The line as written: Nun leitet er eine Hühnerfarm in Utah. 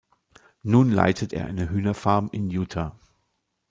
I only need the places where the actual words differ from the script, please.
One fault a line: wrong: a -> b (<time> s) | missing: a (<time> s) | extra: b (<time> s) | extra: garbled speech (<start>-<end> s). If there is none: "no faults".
no faults